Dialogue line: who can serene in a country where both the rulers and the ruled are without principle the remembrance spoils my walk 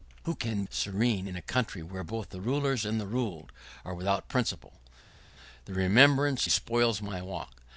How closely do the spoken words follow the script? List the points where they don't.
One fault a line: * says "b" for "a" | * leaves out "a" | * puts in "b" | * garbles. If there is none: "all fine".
all fine